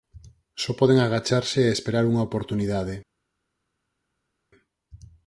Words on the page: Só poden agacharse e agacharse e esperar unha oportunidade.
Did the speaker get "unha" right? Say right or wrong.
right